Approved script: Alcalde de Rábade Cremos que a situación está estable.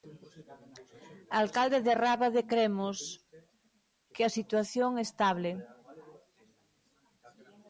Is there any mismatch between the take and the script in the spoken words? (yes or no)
yes